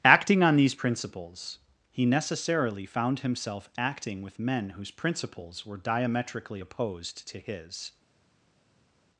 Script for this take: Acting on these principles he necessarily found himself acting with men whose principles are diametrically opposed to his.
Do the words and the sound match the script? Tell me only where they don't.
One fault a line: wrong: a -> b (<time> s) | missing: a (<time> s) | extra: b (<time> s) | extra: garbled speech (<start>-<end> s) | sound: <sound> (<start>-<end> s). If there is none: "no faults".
wrong: are -> were (5.7 s)